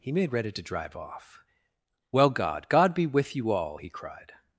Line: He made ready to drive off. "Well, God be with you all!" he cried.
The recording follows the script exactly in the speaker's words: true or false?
false